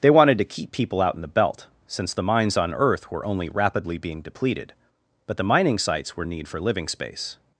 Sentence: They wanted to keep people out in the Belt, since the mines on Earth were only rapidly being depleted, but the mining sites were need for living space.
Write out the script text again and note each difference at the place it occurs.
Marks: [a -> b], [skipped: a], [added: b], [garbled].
They wanted to keep people out in the Belt, since the mines on Earth were only rapidly being depleted, but the mining sites were need for living space.